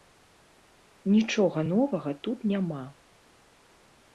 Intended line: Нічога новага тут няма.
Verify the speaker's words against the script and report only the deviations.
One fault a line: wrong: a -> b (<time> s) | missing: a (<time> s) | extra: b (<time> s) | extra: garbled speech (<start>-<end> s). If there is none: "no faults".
no faults